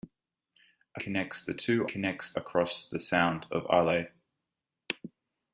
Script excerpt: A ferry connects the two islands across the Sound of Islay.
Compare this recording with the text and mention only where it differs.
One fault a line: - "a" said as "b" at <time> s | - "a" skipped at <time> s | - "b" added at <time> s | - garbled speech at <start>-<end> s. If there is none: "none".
- "ferry" skipped at 1.0 s
- "islands" said as "connects" at 1.9 s